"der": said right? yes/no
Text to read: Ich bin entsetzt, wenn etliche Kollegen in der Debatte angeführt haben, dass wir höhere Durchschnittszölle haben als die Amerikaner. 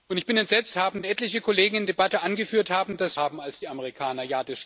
no